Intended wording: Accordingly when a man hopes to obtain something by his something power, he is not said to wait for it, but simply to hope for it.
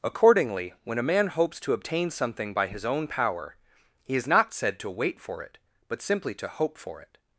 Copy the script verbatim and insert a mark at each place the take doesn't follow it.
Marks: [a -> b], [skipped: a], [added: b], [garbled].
Accordingly when a man hopes to obtain something by his [something -> own] power, he is not said to wait for it, but simply to hope for it.